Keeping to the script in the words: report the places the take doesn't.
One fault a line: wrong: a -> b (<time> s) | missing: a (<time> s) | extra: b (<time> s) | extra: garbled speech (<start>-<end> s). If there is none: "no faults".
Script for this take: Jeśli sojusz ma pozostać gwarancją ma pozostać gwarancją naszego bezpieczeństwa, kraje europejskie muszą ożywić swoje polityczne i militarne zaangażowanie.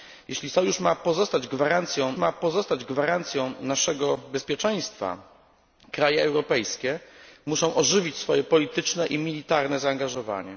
no faults